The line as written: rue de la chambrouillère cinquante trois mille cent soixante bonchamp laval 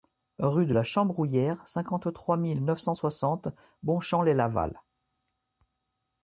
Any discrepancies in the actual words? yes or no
yes